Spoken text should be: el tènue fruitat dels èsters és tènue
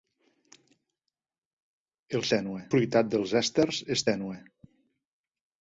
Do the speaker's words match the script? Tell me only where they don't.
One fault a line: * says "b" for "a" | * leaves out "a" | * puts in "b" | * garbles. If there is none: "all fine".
all fine